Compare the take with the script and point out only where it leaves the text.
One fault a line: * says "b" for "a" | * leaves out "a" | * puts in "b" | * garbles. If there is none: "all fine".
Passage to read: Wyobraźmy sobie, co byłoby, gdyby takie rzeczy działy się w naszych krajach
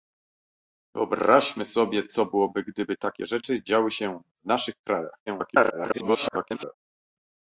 * garbles